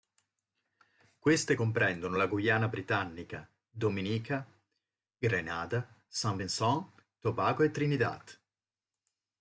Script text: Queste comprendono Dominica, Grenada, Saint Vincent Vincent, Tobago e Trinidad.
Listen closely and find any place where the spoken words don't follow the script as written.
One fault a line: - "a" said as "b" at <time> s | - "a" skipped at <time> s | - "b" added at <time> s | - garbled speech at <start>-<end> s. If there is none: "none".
- "la Guyana britannica" added at 2.2 s
- "Vincent" skipped at 7.1 s